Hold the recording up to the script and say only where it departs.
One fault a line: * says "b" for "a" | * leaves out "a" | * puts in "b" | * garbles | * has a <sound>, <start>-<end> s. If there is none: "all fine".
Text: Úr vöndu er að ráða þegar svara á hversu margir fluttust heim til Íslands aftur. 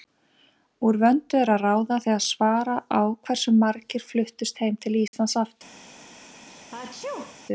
* has a dropout, 5.1-5.1 s
* has a sneeze, 6.5-7.4 s